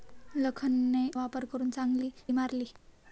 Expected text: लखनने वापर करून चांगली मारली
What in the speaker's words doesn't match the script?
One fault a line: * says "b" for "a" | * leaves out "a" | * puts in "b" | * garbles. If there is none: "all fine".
all fine